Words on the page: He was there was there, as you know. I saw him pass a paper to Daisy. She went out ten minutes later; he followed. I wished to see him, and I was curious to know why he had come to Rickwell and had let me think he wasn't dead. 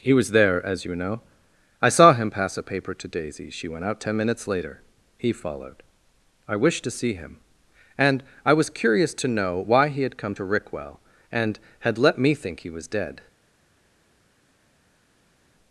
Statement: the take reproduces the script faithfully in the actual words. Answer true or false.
false